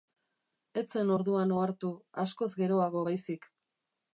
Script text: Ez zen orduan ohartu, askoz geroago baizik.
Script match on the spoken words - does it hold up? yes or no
yes